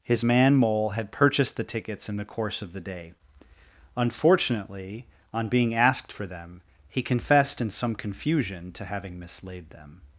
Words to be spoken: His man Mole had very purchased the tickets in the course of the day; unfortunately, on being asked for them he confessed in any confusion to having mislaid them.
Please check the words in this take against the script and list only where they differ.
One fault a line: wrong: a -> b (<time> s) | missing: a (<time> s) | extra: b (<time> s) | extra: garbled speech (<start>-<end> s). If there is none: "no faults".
missing: very (1.1 s)
wrong: any -> some (7.7 s)